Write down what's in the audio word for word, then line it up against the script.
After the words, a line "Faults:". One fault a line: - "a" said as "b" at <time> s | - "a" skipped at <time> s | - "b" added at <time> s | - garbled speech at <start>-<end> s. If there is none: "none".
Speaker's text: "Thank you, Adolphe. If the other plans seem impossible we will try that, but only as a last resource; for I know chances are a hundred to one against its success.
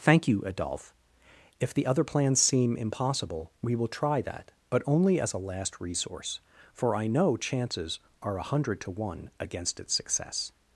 "Thank you, Adolphe. If the other plans seem impossible we will try that, but only as a last resource; for I know chances are a hundred to one against its success.
Faults:
none